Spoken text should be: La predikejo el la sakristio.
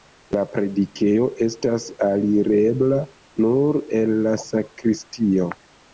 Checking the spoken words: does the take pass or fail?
fail